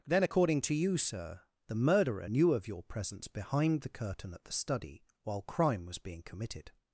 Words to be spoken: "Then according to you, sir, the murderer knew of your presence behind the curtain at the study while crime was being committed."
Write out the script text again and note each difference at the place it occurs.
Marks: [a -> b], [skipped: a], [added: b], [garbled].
"Then according to you, sir, the murderer knew of your presence behind the curtain at the study while crime was being committed."